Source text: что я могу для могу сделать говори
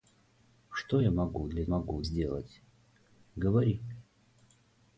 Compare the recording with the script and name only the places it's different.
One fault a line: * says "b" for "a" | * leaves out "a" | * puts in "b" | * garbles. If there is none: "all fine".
all fine